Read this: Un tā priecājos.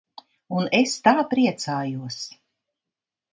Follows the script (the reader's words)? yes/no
no